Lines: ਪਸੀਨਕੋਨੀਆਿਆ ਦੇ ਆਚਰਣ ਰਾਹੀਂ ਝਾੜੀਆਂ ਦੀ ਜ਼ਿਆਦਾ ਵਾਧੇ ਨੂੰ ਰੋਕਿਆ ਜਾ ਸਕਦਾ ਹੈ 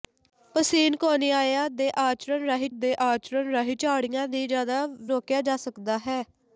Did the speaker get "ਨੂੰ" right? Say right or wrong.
wrong